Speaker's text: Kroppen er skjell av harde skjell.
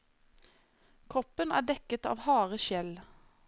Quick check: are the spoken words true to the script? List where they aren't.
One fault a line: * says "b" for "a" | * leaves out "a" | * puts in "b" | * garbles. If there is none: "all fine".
* says "dekket" for "skjell"